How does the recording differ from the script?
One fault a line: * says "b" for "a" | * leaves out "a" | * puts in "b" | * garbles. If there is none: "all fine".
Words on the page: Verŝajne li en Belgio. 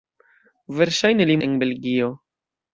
all fine